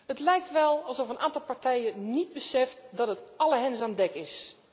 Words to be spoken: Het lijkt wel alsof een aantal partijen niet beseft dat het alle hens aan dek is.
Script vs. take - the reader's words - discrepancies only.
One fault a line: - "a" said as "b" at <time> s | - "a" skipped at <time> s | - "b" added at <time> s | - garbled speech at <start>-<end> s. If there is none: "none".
none